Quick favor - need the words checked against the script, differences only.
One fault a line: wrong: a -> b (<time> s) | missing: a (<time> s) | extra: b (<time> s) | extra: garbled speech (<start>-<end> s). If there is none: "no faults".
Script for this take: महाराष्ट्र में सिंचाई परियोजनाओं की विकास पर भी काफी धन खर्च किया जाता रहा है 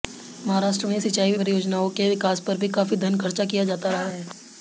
wrong: की -> के (1.9 s)